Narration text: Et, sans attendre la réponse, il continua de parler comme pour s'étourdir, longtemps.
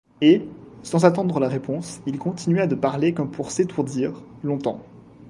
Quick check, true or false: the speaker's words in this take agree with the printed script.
true